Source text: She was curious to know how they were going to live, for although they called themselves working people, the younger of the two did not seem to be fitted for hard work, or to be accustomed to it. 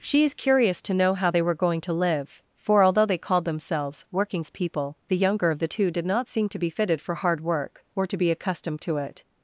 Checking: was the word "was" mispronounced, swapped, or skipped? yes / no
yes